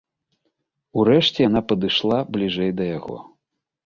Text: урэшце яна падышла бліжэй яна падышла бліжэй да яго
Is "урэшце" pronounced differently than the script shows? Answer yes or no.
no